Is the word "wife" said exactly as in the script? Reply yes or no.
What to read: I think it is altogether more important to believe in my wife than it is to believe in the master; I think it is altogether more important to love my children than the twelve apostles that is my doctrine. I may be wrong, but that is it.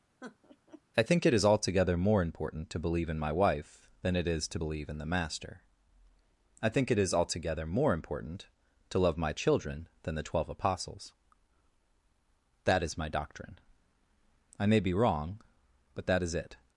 yes